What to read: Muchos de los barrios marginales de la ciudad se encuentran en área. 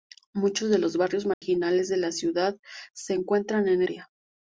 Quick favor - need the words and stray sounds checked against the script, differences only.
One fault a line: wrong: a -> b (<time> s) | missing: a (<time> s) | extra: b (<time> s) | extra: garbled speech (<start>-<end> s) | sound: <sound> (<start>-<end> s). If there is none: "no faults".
sound: dropout (1.3-1.4 s)